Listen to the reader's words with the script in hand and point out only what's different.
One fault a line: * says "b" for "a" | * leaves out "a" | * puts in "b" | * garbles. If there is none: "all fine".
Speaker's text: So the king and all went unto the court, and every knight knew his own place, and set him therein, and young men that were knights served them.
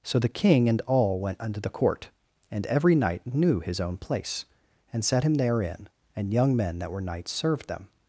all fine